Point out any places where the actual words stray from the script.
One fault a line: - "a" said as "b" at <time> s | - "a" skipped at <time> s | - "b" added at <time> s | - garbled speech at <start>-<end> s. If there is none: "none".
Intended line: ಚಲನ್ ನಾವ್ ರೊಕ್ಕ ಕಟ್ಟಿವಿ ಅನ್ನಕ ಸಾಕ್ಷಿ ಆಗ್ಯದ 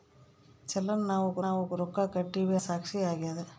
- "ನಾವ್" added at 1.4 s
- "ಅನ್ನಕ" skipped at 2.6 s